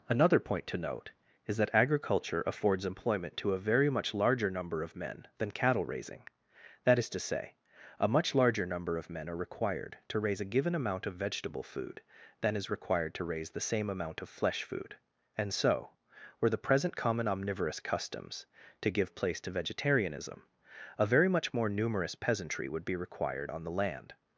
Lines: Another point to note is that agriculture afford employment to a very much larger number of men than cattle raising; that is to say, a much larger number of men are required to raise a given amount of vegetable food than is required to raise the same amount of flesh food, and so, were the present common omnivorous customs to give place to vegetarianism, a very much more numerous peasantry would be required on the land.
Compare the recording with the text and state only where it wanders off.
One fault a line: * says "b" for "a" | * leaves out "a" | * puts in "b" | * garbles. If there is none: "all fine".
* says "affords" for "afford"